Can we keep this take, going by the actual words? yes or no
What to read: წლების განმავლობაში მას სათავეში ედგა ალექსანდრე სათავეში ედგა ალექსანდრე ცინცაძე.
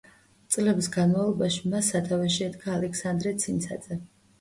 no